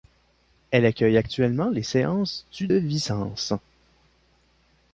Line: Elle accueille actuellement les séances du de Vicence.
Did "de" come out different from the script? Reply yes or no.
yes